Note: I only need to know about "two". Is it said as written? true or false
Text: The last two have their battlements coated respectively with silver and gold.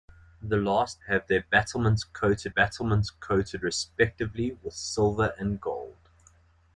false